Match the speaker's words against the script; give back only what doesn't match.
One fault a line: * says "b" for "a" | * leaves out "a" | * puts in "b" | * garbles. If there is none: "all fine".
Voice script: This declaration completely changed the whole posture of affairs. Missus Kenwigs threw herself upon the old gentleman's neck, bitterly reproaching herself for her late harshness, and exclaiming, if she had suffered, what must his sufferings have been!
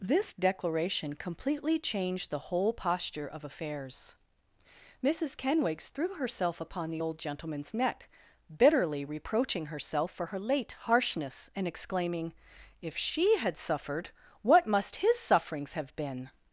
all fine